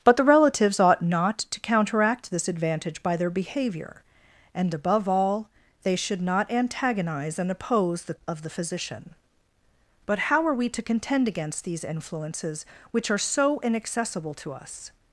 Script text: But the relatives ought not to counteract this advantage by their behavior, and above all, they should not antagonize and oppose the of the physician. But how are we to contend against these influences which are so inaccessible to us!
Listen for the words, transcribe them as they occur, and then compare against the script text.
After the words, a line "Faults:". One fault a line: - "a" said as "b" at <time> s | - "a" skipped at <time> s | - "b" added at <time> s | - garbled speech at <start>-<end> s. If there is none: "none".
But the relatives ought not to counteract this advantage by their behavior, and above all, they should not antagonize and oppose the of the physician. But how are we to contend against these influences which are so inaccessible to us!
Faults:
none